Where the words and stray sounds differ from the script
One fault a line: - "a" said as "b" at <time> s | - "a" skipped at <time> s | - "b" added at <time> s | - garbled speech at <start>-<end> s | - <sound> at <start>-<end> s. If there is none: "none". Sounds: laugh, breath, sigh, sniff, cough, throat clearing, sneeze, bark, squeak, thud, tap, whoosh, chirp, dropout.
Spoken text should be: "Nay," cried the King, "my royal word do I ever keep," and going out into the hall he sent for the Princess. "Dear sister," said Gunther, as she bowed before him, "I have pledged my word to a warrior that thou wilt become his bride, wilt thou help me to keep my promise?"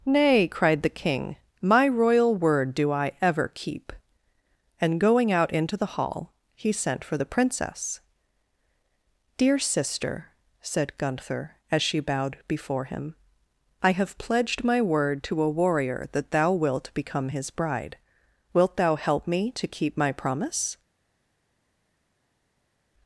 none